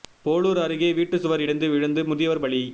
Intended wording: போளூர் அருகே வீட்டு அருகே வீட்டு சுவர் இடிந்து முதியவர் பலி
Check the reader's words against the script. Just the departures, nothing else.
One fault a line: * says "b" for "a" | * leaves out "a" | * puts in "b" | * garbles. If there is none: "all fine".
* leaves out "அருகே வீட்டு"
* puts in "விழுந்து"